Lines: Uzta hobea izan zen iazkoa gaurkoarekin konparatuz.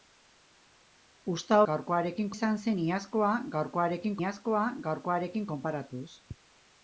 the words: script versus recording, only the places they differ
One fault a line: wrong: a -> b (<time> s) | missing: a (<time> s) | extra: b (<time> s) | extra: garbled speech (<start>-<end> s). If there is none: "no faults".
wrong: hobea -> gaurkoarekin (1.7 s)
extra: iazkoa gaurkoarekin (4.2 s)